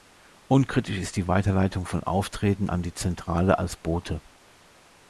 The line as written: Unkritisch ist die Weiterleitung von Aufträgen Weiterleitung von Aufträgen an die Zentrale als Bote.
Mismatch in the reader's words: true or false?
true